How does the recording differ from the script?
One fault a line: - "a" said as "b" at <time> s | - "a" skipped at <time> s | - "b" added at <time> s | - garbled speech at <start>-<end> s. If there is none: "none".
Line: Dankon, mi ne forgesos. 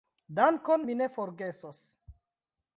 none